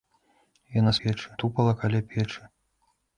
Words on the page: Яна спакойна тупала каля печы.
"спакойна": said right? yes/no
no